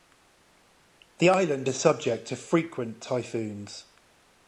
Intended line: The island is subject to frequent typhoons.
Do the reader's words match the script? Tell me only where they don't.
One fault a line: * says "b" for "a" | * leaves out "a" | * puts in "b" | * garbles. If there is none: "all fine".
all fine